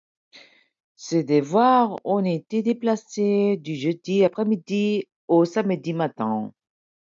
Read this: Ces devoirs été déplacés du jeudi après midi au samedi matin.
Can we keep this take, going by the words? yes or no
no